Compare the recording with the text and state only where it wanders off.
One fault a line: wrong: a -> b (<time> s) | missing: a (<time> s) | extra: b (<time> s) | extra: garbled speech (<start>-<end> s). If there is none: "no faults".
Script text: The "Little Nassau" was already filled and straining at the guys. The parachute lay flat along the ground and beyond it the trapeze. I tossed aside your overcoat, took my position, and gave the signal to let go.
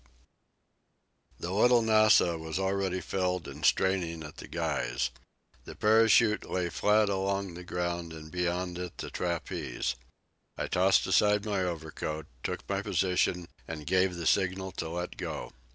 wrong: your -> my (11.5 s)